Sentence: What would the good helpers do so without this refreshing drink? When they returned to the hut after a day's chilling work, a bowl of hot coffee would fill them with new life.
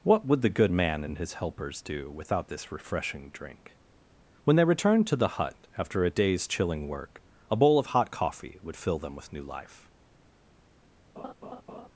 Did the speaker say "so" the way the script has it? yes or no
no